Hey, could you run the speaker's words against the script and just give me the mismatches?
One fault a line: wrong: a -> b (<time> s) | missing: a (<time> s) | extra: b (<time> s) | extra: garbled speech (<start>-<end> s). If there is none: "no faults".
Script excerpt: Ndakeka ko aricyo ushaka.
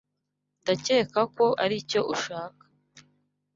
no faults